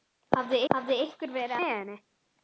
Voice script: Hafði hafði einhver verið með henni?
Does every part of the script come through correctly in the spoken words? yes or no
yes